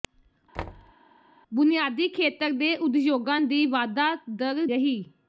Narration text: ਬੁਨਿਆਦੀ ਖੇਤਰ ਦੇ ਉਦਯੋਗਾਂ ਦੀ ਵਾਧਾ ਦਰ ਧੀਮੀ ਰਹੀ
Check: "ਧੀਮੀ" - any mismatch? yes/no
yes